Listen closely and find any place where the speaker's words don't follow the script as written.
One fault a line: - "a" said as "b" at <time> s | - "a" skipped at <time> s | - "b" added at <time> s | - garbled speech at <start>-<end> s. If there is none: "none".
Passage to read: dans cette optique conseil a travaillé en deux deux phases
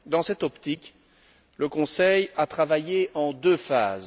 - "le" added at 1.6 s
- "deux" skipped at 3.6 s